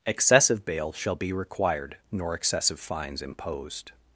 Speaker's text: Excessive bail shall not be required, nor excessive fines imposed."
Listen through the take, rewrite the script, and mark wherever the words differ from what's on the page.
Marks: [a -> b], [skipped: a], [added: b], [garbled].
Excessive bail shall [skipped: not] be required, nor excessive fines imposed."